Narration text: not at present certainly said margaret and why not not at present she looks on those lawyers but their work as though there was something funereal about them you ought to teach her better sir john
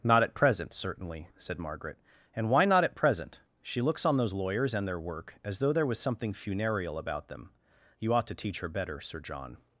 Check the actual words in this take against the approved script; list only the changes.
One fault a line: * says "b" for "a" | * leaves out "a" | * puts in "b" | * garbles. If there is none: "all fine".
* leaves out "not"
* says "and" for "but"